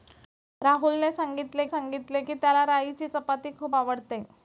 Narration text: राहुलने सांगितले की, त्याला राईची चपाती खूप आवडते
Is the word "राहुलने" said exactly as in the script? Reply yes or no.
yes